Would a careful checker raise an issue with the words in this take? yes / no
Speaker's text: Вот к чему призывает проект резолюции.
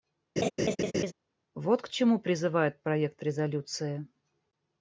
no